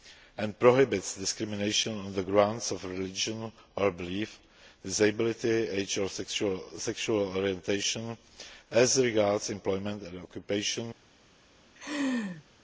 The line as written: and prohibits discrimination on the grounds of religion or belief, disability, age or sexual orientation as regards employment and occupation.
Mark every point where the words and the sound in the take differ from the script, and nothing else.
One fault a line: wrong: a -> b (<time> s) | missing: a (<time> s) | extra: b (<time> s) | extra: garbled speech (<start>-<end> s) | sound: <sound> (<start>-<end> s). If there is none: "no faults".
sound: laugh (11.8-12.4 s)